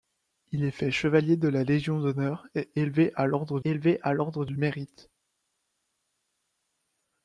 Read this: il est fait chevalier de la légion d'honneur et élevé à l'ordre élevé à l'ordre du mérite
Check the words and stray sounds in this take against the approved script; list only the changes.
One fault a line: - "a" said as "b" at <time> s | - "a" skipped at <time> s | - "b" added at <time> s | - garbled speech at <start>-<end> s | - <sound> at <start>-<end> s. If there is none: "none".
none